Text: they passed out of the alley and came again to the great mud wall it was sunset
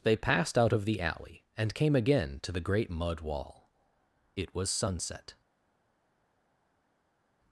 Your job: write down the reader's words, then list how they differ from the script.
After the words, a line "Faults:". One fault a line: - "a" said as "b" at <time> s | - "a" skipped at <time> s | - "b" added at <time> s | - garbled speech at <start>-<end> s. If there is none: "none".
they passed out of the alley and came again to the great mud wall it was sunset
Faults:
none